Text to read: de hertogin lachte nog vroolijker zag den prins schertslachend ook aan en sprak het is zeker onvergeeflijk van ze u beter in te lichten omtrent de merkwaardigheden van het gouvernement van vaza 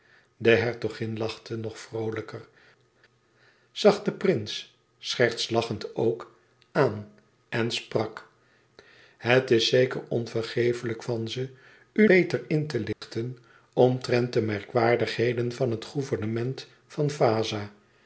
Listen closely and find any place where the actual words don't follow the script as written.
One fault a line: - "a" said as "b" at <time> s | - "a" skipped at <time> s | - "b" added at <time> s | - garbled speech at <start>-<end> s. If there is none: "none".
none